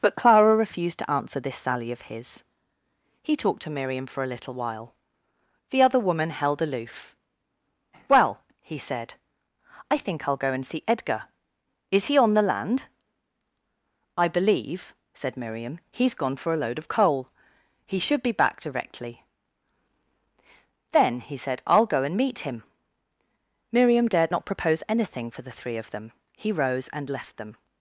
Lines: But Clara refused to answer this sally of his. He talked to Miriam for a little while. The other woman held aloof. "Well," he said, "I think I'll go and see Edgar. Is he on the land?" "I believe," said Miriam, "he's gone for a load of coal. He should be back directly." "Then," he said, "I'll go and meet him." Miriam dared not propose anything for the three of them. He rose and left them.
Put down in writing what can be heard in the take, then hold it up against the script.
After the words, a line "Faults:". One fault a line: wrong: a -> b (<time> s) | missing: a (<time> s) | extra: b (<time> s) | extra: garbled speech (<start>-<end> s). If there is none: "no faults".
But Clara refused to answer this sally of his. He talked to Miriam for a little while. The other woman held aloof. "Well," he said, "I think I'll go and see Edgar. Is he on the land?" "I believe," said Miriam, "he's gone for a load of coal. He should be back directly." "Then," he said, "I'll go and meet him." Miriam dared not propose anything for the three of them. He rose and left them.
Faults:
no faults